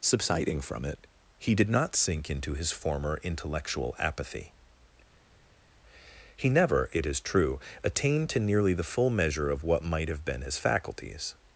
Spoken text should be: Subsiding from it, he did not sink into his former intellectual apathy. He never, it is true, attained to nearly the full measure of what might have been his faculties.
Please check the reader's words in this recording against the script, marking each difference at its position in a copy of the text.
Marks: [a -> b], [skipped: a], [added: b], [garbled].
Subsiding from it, he did not sink into his former intellectual apathy. He never, it is true, attained to nearly the full measure of what might have been his faculties.